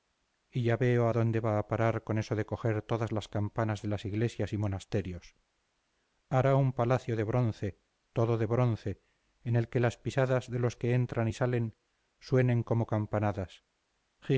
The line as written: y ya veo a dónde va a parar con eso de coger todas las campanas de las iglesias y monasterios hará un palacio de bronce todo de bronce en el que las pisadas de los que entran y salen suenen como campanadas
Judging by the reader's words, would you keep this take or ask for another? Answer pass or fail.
pass